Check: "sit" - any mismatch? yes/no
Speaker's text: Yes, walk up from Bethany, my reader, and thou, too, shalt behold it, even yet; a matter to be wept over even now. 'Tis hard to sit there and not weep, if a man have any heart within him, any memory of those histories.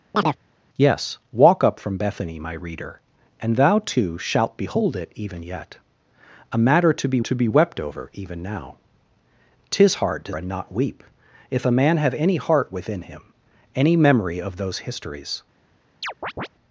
yes